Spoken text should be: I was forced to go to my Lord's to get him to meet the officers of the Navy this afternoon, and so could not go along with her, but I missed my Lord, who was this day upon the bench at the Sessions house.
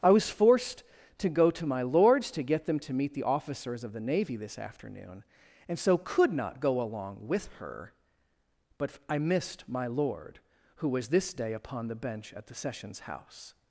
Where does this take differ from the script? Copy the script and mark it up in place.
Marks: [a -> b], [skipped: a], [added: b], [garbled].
I was forced to go to my Lord's to get [him -> them] to meet the officers of the Navy this afternoon, and so could not go along with her, but I missed my Lord, who was this day upon the bench at the Sessions house.